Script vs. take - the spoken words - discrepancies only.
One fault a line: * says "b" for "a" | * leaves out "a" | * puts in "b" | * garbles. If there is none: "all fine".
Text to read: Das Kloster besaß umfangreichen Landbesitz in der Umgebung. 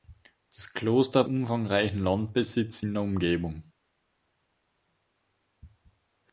* leaves out "besaß"